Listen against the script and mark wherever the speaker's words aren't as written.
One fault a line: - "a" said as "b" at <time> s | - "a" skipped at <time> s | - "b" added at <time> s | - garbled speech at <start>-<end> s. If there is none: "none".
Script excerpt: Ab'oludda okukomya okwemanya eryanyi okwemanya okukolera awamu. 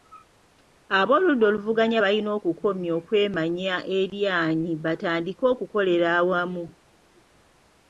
- "oluvuganya balina" added at 1.5 s
- "okwemanya" said as "batandike" at 4.8 s